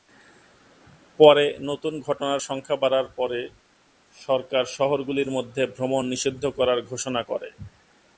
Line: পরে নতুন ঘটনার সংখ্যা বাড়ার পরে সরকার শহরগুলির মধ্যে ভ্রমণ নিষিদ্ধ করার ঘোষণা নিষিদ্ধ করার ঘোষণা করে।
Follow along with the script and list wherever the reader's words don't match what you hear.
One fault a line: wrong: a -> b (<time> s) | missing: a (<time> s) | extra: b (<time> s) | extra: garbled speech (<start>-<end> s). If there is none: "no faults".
missing: নিষিদ্ধ করার ঘোষণা (7.2 s)